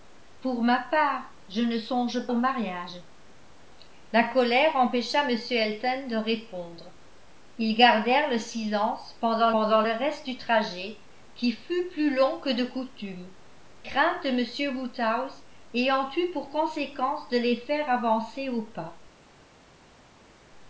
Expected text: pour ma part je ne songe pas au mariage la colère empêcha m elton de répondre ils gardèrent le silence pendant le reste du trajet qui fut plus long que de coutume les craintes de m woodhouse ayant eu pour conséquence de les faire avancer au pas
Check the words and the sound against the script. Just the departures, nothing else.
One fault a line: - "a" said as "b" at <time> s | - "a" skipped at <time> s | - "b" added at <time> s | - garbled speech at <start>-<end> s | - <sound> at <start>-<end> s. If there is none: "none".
- "pas" skipped at 2.3 s
- "pendant" added at 9.5 s
- "les" skipped at 13.3 s